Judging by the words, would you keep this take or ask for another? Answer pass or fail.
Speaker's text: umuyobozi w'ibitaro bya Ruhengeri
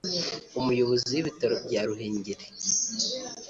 pass